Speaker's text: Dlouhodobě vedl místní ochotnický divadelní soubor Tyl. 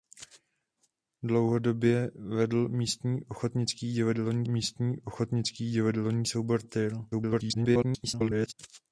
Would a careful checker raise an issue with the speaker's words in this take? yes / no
yes